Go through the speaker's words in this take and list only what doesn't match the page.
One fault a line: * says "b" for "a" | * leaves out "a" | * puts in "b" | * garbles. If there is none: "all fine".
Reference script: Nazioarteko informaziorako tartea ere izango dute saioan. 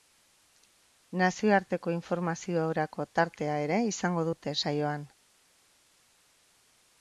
all fine